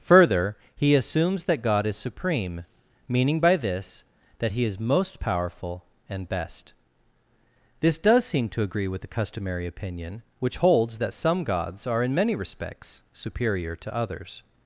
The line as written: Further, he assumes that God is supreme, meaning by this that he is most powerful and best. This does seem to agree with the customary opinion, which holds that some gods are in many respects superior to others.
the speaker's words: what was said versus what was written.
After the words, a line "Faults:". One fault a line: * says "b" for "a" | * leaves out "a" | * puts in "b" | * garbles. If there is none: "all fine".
Further, he assumes that God is supreme, meaning by this that he is most powerful and best. This does seem to agree with the customary opinion, which holds that some gods are in many respects superior to others.
Faults:
all fine